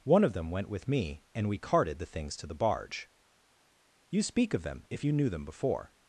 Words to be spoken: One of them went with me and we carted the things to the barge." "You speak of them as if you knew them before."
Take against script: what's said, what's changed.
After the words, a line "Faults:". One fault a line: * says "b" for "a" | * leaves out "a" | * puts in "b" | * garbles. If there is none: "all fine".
One of them went with me and we carted the things to the barge." "You speak of them if you knew them before."
Faults:
* leaves out "as"